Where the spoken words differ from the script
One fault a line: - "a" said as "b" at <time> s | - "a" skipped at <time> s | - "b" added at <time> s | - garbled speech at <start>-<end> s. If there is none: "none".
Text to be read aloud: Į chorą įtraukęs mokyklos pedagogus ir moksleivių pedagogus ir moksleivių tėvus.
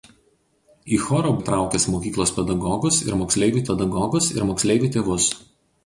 none